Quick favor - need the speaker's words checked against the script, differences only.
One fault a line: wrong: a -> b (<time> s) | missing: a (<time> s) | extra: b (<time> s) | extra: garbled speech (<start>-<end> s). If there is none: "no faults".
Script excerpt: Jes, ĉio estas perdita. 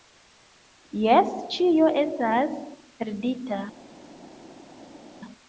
no faults